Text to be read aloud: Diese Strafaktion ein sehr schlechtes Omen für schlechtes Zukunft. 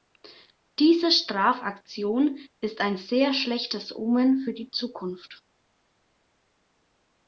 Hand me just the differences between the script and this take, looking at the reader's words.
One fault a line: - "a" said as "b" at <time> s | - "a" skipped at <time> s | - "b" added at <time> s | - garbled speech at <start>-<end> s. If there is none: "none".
- "ist" added at 2.6 s
- "schlechtes" said as "die" at 4.5 s